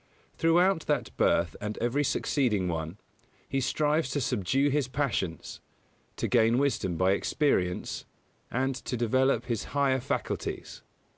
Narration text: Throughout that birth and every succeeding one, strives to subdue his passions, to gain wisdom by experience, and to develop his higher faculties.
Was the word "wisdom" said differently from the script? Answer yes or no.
no